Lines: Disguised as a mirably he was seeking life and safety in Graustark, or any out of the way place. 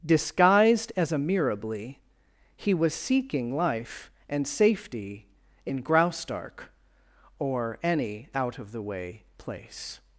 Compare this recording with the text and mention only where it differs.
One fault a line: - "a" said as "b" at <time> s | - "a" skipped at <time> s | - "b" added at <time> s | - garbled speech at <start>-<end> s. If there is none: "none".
none